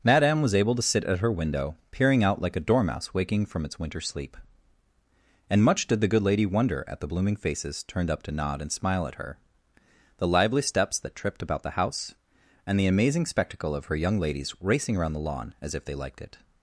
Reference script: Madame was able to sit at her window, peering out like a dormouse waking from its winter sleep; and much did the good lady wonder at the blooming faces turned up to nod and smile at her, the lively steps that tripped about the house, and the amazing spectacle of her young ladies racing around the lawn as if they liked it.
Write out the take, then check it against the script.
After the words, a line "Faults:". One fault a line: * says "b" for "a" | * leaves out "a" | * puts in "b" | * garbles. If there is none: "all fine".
Madame was able to sit at her window, peering out like a dormouse waking from its winter sleep; and much did the good lady wonder at the blooming faces turned up to nod and smile at her, the lively steps that tripped about the house, and the amazing spectacle of her young ladies racing around the lawn as if they liked it.
Faults:
all fine